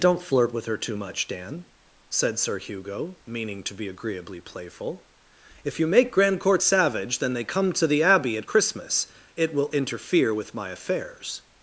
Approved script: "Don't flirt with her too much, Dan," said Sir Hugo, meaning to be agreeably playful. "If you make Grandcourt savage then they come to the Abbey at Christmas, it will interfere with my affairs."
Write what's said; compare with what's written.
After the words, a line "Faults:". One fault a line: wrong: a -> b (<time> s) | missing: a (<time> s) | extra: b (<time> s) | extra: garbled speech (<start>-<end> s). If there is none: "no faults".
"Don't flirt with her too much, Dan," said Sir Hugo, meaning to be agreeably playful. "If you make Grandcourt savage then they come to the Abbey at Christmas, it will interfere with my affairs."
Faults:
no faults